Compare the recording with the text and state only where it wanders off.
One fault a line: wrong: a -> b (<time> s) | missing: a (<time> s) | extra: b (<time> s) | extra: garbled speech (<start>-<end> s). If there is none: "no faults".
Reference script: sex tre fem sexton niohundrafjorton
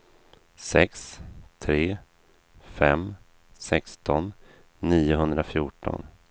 no faults